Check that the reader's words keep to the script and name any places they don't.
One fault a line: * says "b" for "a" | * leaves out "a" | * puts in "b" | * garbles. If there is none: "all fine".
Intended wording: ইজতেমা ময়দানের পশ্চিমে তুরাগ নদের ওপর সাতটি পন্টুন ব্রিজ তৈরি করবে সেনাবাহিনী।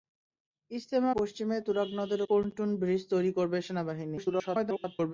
* leaves out "ময়দানের"
* leaves out "ওপর সাতটি"
* garbles